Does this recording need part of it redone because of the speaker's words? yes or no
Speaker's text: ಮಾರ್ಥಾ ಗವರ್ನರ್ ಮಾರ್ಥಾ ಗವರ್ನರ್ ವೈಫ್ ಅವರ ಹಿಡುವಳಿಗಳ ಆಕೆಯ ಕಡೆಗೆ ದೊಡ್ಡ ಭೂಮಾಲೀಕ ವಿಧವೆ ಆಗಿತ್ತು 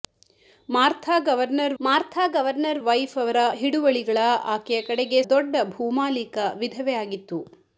no